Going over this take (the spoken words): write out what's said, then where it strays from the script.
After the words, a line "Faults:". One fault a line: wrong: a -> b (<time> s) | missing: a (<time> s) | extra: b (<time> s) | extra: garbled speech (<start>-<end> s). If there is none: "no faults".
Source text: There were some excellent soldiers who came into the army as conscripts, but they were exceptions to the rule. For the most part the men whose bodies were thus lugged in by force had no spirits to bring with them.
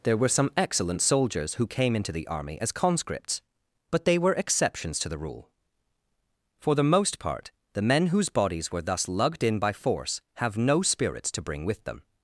There were some excellent soldiers who came into the army as conscripts, but they were exceptions to the rule. For the most part the men whose bodies were thus lugged in by force have no spirits to bring with them.
Faults:
wrong: had -> have (10.4 s)